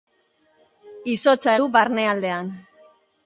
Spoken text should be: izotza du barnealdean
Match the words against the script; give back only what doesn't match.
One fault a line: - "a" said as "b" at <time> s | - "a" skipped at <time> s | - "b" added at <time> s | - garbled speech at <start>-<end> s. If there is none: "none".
none